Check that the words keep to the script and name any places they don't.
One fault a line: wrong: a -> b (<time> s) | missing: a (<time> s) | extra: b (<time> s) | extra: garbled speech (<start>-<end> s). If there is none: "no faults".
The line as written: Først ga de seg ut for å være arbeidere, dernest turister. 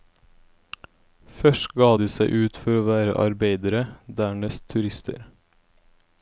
no faults